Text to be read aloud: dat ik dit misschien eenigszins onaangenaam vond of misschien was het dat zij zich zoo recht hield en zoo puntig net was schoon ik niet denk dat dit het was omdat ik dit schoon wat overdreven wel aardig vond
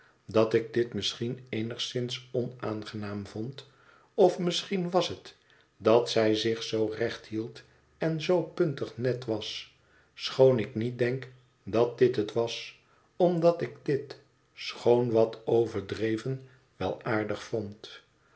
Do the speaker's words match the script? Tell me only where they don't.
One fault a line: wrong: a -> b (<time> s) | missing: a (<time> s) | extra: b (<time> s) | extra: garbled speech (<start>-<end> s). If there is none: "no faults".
no faults